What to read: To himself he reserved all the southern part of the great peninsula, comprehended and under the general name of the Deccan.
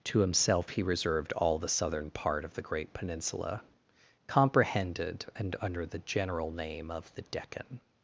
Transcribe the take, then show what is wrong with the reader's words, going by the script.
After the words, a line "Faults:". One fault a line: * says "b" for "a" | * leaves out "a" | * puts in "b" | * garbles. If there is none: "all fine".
To himself he reserved all the southern part of the great peninsula, comprehended and under the general name of the Deccan.
Faults:
all fine